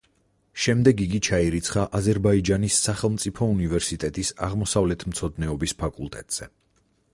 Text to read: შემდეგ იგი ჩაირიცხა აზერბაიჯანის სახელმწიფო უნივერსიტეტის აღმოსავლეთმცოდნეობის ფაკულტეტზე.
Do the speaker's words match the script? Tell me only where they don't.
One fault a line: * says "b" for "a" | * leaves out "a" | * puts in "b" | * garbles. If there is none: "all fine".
all fine